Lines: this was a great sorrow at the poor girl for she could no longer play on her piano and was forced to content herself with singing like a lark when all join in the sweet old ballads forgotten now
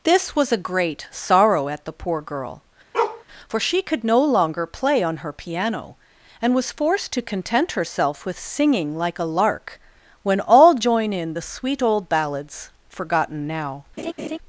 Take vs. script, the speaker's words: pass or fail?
pass